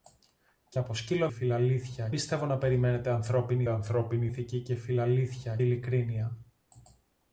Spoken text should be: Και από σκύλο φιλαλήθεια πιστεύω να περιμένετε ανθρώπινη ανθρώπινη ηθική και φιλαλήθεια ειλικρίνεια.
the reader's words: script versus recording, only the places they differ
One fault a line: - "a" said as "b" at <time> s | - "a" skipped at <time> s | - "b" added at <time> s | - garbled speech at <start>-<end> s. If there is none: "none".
none